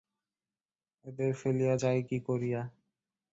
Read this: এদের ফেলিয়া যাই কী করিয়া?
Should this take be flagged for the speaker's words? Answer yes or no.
no